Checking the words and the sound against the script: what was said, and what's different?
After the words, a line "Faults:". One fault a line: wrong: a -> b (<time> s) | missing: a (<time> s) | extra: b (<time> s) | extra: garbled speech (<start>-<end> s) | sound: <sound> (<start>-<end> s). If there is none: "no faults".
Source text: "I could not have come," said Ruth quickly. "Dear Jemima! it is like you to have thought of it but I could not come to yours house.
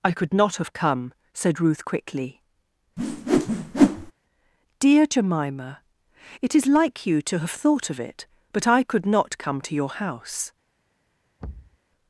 "I could not have come," said Ruth quickly. "Dear Jemima! it is like you to have thought of it but I could not come to your house.
Faults:
sound: whoosh (3.0-4.1 s)
wrong: yours -> your (9.7 s)
sound: thud (11.4-11.8 s)